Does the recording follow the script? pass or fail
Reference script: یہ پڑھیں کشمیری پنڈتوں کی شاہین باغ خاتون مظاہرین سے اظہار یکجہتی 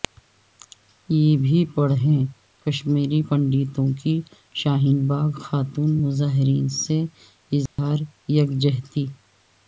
fail